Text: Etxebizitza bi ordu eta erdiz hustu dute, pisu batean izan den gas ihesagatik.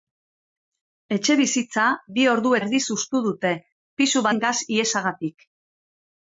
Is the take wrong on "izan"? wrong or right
wrong